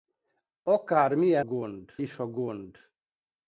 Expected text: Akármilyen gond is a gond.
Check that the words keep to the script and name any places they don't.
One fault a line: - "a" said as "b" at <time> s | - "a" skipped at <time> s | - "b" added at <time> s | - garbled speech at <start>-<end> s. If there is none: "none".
none